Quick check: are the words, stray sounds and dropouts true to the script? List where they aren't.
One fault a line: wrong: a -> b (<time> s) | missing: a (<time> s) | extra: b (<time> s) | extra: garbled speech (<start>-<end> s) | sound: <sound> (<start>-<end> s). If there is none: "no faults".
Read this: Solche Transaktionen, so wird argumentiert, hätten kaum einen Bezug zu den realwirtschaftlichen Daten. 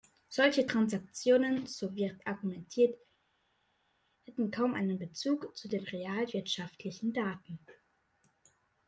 no faults